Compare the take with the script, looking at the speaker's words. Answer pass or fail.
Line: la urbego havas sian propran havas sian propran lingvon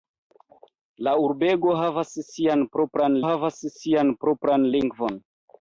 pass